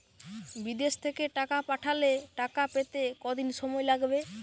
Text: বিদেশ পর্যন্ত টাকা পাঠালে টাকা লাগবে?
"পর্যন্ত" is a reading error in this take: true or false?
true